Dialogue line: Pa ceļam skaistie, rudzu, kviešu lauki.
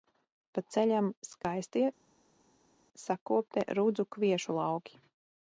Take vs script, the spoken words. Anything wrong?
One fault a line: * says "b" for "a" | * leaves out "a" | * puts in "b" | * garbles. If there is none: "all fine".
* puts in "sakoptie"